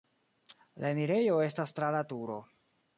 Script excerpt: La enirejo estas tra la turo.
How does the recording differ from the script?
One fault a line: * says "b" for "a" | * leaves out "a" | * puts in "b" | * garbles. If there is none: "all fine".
all fine